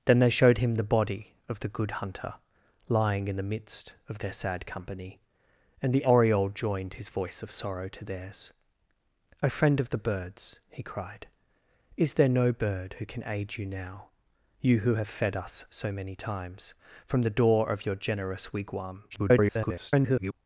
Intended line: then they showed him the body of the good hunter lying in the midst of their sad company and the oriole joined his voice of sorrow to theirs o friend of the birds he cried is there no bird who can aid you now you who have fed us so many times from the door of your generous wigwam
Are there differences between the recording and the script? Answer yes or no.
yes